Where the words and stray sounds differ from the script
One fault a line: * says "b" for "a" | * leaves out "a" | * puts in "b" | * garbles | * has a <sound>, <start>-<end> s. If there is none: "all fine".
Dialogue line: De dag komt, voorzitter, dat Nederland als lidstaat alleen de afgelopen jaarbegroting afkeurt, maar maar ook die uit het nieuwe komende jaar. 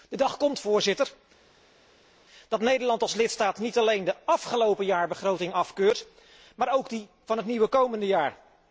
* puts in "niet"
* leaves out "maar"
* says "van" for "uit"